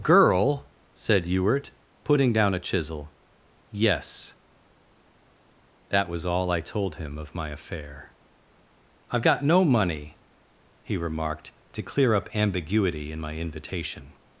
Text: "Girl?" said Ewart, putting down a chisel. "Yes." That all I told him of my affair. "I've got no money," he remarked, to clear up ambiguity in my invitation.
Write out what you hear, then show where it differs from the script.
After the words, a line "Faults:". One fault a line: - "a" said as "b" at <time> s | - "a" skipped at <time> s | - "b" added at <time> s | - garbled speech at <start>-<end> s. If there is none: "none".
"Girl?" said Ewart, putting down a chisel. "Yes." That was all I told him of my affair. "I've got no money," he remarked, to clear up ambiguity in my invitation.
Faults:
- "was" added at 6.1 s